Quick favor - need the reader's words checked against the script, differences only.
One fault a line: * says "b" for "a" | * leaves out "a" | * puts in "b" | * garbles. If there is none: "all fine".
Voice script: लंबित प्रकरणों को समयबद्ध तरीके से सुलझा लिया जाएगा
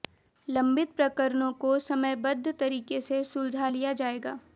all fine